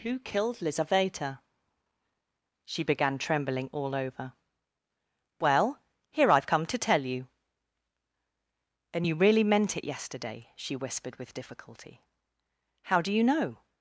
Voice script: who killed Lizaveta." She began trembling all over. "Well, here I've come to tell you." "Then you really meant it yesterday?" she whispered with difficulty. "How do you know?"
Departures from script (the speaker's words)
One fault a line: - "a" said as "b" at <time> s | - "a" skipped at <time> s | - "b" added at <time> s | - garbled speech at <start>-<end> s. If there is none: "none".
- "Then" said as "And" at 8.9 s